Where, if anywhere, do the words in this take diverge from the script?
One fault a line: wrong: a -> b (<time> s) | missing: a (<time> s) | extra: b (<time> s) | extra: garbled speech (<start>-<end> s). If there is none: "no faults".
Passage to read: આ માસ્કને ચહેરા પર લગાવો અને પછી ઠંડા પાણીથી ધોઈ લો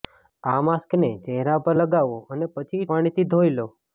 missing: ઠંડા (2.8 s)